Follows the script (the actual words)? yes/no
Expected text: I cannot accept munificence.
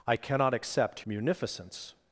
yes